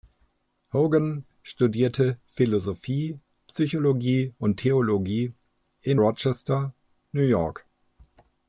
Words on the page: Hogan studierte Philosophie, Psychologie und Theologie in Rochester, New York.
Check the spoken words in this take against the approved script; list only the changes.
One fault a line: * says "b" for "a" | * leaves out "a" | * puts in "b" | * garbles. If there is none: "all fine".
all fine